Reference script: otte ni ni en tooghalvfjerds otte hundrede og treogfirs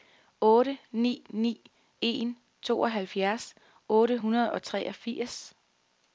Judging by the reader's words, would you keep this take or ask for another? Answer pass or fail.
pass